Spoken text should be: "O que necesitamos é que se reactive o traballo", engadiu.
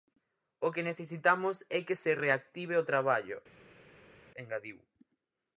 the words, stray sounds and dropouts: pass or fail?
pass